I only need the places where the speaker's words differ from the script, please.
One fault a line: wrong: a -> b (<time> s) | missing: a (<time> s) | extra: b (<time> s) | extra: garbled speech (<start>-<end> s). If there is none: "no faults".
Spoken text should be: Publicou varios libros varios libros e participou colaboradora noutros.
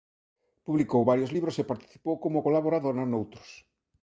missing: varios libros (1.6 s)
extra: como (2.2 s)